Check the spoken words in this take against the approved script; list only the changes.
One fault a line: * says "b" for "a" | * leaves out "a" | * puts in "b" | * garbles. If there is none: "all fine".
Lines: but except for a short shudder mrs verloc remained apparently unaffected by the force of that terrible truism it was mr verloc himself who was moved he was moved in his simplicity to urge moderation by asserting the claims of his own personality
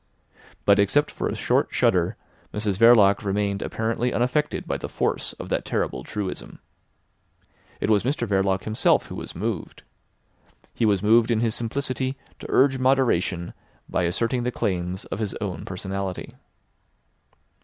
all fine